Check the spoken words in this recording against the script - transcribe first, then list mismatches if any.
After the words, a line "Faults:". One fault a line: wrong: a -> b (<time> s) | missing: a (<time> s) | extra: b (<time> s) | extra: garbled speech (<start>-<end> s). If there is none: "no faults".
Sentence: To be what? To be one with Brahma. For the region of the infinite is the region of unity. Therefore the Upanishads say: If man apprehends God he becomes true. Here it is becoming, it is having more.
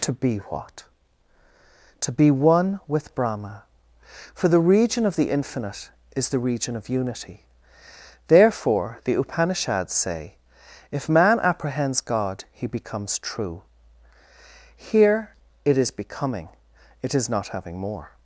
To be what? To be one with Brahma. For the region of the infinite is the region of unity. Therefore the Upanishads say: If man apprehends God he becomes true. Here it is becoming, it is not having more.
Faults:
extra: not (17.3 s)